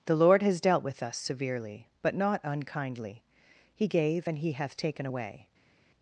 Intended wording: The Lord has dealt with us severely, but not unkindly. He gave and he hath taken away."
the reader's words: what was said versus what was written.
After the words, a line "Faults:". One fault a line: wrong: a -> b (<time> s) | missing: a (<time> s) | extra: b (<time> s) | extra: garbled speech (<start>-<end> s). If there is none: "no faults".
The Lord has dealt with us severely, but not unkindly. He gave and he hath taken away."
Faults:
no faults